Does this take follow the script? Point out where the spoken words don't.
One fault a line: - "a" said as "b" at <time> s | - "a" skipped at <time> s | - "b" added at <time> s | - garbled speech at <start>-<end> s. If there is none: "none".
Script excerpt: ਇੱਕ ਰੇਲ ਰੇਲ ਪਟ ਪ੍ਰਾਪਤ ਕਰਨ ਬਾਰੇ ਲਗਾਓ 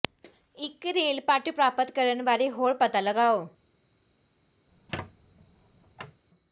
- "ਰੇਲ" skipped at 1.2 s
- "ਹੋਰ ਪਤਾ" added at 2.5 s